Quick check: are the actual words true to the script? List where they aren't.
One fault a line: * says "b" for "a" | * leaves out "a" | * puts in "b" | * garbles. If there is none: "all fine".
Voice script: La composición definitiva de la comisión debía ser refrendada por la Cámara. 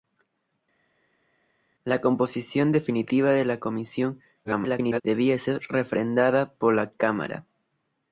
* garbles